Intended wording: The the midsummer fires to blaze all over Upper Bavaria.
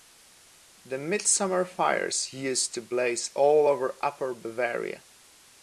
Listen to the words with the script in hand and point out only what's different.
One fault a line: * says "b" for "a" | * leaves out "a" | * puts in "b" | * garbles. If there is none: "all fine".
* leaves out "the"
* puts in "used"